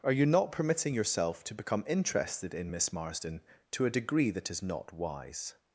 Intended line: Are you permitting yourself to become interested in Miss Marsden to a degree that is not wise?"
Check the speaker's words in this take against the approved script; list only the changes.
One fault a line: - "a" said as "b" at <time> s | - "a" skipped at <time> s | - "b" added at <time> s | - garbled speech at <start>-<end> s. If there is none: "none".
- "not" added at 0.2 s